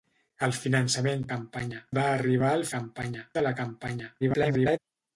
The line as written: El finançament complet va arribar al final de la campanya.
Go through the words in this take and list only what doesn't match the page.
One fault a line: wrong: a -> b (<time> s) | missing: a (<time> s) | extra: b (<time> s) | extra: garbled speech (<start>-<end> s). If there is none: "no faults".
wrong: complet -> campanya (1.4 s)
wrong: final -> campanya (2.8 s)
extra: garbled speech (4.2-4.8 s)